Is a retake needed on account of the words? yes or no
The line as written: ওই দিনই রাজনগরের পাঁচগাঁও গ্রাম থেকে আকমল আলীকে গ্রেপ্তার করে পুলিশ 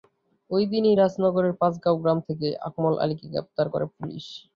no